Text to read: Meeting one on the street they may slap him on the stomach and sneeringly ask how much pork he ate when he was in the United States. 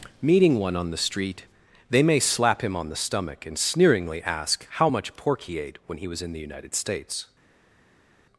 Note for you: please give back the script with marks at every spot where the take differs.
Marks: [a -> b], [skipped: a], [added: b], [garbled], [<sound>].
Meeting one on the street they may slap him on the stomach and sneeringly ask how much pork he ate when he was in the United States.